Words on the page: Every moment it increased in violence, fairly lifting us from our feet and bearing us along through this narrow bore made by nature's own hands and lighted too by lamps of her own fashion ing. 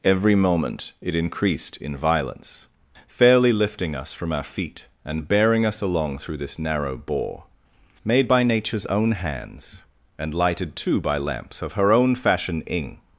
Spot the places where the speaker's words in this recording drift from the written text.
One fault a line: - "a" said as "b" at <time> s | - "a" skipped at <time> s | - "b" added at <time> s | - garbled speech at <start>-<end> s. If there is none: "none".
none